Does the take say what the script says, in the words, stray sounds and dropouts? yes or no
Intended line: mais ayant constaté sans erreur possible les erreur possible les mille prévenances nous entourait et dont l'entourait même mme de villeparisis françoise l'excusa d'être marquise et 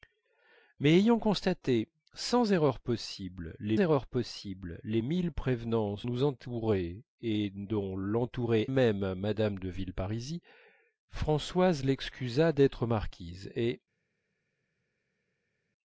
yes